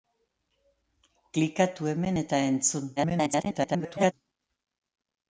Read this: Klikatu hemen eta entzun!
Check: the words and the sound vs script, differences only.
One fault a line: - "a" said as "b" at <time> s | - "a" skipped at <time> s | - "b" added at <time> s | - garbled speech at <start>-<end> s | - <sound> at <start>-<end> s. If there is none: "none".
- garbled speech at 3.0-4.1 s